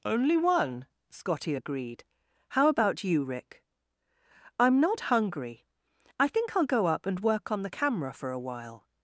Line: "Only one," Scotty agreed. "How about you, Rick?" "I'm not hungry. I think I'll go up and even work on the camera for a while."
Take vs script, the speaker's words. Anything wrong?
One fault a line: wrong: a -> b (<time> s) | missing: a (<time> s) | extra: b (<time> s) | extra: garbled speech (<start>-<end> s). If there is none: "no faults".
missing: even (7.2 s)